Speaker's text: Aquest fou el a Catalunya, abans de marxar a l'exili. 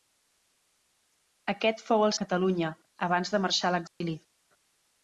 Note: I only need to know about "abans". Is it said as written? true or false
true